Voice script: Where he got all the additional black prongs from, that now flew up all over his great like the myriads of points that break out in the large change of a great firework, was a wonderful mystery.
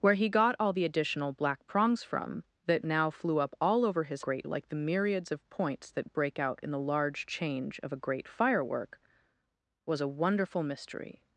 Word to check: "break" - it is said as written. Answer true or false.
true